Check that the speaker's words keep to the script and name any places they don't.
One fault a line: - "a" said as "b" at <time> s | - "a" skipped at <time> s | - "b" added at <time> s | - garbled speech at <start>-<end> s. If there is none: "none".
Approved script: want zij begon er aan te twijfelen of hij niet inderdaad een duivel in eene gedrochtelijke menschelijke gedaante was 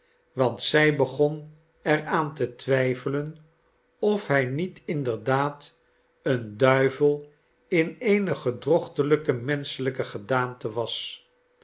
none